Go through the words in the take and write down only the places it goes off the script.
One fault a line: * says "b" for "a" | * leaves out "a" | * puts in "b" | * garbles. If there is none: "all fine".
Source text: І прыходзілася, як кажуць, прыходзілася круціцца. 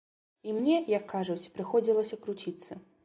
* says "мне" for "прыходзілася"